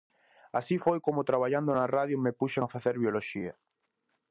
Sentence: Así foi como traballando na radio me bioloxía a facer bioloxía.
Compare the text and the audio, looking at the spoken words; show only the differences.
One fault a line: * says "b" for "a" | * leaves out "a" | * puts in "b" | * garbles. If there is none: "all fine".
* says "puxen" for "bioloxía"